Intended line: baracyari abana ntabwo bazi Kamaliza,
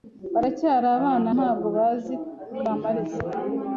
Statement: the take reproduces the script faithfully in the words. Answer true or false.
true